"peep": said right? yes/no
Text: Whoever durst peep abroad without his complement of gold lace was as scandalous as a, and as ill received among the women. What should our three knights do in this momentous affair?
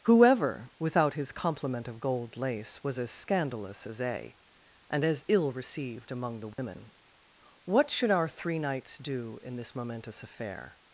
no